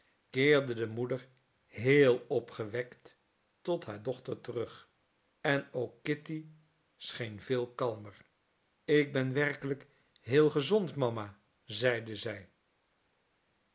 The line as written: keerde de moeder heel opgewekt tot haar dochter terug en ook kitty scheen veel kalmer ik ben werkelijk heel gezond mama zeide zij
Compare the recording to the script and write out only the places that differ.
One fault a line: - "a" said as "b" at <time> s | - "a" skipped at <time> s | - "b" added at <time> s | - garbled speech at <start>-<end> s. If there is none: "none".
none